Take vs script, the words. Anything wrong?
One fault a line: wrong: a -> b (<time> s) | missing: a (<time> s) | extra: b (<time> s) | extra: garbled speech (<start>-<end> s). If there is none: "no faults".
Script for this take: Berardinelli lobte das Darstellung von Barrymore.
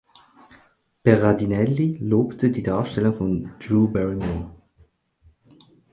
wrong: das -> die (2.5 s)
extra: Drew (3.6 s)